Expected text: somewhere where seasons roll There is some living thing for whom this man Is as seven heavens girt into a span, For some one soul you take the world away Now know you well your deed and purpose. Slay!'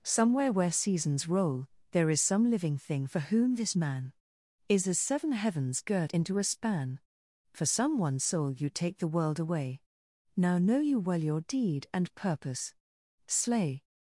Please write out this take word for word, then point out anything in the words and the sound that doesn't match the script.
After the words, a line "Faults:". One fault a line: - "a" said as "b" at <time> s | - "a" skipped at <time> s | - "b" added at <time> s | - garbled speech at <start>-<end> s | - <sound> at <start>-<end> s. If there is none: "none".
somewhere where seasons roll There is some living thing for whom this man Is as seven heavens girt into a span, For some one soul you take the world away Now know you well your deed and purpose. Slay!'
Faults:
none